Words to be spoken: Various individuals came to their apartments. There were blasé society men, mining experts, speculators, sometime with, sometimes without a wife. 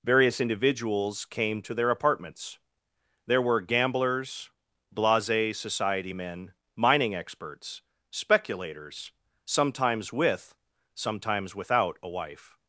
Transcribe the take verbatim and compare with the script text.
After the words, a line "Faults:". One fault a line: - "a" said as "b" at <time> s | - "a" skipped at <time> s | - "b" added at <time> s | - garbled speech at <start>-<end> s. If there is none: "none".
Various individuals came to their apartments. There were gamblers, blasé society men, mining experts, speculators, sometimes with, sometimes without a wife.
Faults:
- "gamblers" added at 3.6 s
- "sometime" said as "sometimes" at 9.5 s